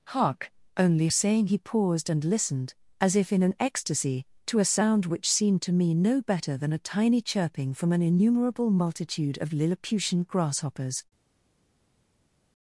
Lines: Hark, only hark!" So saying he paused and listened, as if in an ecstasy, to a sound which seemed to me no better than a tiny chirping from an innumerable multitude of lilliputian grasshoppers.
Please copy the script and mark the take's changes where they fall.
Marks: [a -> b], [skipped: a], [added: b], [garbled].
Hark, only [skipped: hark!" So] saying he paused and listened, as if in an ecstasy, to a sound which seemed to me no better than a tiny chirping from an innumerable multitude of lilliputian grasshoppers.